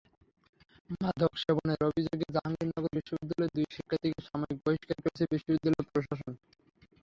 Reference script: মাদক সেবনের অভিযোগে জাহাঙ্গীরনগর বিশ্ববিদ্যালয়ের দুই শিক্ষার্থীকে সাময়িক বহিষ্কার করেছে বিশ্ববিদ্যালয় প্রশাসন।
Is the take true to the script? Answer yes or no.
yes